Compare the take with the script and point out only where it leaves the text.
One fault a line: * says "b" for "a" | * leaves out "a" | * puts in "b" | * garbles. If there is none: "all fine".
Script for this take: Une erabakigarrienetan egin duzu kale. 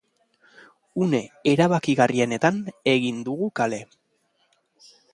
* says "dugu" for "duzu"